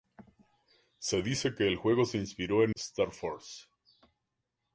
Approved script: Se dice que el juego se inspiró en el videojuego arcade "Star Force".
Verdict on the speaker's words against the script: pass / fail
fail